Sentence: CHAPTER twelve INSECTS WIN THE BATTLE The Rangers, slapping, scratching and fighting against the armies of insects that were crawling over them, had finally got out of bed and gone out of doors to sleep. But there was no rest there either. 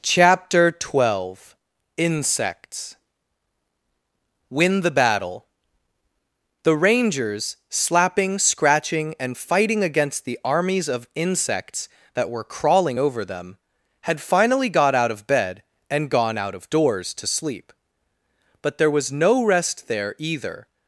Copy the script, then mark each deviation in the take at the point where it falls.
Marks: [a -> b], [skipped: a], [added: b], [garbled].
CHAPTER twelve INSECTS WIN THE BATTLE The Rangers, slapping, scratching and fighting against the armies of insects that were crawling over them, had finally got out of bed and gone out of doors to sleep. But there was no rest there either.